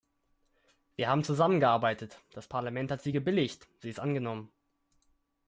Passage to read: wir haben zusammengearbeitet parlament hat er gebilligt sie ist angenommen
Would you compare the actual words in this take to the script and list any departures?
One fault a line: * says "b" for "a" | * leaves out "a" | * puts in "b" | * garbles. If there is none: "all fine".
* puts in "das"
* says "sie" for "er"